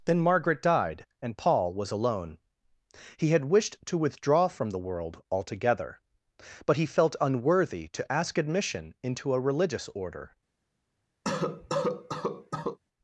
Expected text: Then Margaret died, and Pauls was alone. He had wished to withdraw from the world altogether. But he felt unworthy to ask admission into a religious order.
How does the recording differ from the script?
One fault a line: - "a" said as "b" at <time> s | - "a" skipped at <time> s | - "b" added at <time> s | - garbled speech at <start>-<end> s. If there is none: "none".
- "Pauls" said as "Paul" at 1.4 s